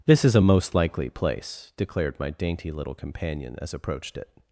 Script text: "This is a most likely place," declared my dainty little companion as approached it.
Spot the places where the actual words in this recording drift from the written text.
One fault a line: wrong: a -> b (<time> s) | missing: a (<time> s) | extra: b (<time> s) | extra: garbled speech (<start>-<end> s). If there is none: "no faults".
no faults